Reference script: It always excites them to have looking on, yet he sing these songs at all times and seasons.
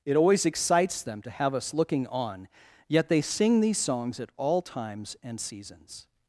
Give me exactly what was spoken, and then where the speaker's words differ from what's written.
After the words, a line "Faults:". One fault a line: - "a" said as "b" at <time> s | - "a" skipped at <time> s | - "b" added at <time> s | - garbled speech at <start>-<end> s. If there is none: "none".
It always excites them to have us looking on, yet they sing these songs at all times and seasons.
Faults:
- "us" added at 1.5 s
- "he" said as "they" at 3.1 s